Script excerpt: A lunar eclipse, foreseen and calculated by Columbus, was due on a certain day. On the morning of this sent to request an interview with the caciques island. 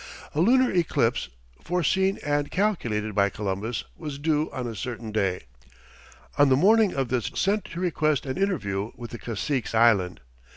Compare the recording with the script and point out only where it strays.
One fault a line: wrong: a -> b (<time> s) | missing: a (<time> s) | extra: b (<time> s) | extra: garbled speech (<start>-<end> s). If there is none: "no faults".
no faults